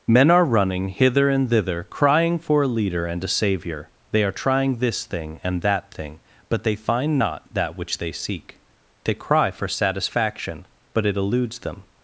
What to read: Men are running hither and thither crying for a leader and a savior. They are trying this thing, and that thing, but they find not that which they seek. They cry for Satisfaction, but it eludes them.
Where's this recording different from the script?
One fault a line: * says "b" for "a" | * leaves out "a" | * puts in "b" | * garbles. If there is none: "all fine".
all fine